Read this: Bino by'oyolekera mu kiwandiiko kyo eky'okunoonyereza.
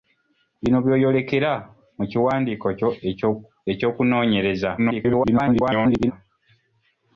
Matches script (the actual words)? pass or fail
fail